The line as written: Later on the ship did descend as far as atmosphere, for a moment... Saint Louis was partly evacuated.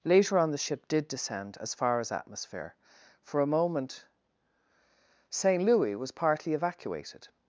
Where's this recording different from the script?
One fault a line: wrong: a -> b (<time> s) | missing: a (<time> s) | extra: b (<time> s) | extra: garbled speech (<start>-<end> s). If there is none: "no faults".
no faults